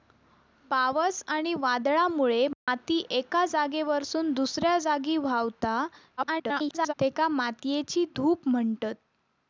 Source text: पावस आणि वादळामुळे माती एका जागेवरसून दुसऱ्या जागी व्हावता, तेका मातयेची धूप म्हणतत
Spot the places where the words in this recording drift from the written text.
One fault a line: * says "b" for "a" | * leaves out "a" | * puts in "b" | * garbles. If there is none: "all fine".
* garbles